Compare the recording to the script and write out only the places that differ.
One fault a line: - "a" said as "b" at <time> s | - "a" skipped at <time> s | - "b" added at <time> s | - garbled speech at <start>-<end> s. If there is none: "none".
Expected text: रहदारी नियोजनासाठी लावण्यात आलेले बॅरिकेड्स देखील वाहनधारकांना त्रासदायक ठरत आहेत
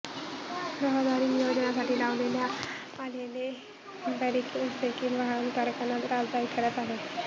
none